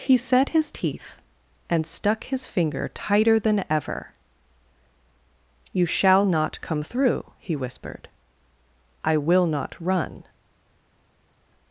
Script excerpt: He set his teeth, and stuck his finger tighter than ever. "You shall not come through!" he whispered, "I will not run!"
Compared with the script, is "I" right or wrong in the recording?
right